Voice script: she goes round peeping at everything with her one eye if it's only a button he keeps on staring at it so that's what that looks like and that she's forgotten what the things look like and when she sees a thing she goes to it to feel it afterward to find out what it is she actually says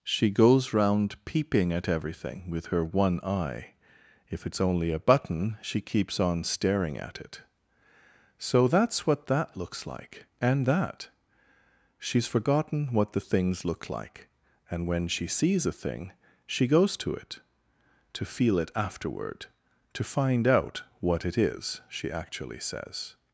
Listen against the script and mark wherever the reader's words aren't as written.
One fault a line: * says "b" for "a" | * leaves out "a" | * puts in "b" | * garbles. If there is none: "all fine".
* says "she" for "he"